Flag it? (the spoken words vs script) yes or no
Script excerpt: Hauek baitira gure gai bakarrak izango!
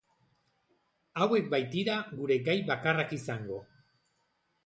no